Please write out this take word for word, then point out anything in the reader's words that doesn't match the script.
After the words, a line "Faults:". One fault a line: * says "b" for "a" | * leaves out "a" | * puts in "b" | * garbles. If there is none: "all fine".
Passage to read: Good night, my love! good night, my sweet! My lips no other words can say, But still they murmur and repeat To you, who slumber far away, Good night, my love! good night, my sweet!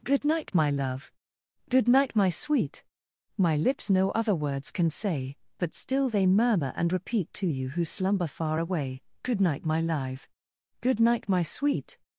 Good night, my love! good night, my sweet! My lips no other words can say, But still they murmur and repeat To you, who slumber far away, Good night, my live! good night, my sweet!
Faults:
* says "live" for "love"